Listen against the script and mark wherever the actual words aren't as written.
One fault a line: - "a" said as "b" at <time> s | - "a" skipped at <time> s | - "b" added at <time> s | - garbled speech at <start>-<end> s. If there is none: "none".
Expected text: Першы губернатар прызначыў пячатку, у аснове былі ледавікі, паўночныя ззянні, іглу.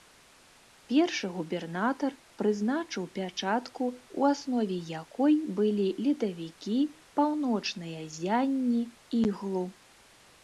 - "якой" added at 5.0 s